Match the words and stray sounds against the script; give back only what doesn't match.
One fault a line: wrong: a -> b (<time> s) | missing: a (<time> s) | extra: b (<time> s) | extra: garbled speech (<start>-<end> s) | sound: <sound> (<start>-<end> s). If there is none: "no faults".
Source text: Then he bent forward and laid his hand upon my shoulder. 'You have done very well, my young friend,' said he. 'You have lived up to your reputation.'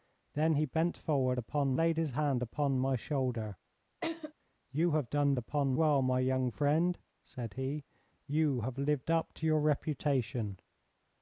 wrong: and -> upon (1.4 s)
sound: laugh (4.0-4.3 s)
wrong: very -> upon (5.4 s)